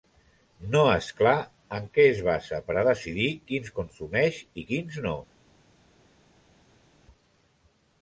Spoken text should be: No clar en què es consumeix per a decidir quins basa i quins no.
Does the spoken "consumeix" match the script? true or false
false